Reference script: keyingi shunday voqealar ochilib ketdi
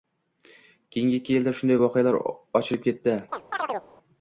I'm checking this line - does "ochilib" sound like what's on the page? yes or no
yes